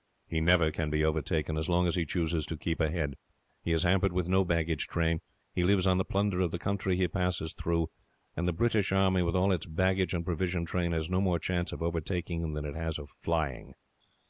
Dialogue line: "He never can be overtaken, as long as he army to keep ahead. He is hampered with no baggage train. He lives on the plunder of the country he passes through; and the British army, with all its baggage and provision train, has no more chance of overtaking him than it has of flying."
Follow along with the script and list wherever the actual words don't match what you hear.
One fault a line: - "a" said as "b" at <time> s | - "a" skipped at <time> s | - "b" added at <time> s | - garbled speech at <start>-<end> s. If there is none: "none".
- "army" said as "chooses" at 2.1 s